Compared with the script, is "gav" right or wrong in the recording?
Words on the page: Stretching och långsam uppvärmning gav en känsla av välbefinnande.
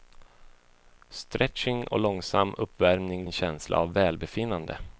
wrong